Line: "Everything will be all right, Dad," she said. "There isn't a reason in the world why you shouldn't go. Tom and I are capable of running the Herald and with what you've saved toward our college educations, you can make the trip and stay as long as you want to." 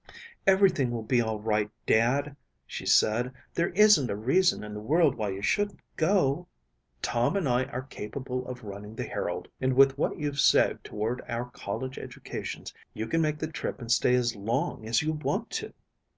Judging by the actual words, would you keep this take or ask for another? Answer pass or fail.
pass